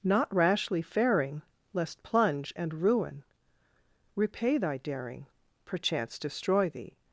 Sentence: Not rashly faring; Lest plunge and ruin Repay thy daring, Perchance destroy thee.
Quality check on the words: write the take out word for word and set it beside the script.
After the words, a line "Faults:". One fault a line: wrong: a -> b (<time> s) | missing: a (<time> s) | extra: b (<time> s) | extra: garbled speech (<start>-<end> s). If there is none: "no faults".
Not rashly faring; Lest plunge and ruin Repay thy daring, Perchance destroy thee.
Faults:
no faults